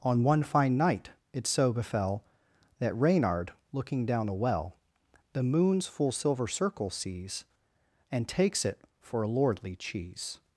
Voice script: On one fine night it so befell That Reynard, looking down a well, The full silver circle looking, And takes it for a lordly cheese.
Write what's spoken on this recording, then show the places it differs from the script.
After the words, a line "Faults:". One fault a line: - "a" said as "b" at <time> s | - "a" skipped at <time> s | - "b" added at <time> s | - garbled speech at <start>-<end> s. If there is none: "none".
On one fine night it so befell That Reynard, looking down a well, The moons full silver circle sees, And takes it for a lordly cheese.
Faults:
- "moons" added at 5.4 s
- "looking" said as "sees" at 6.9 s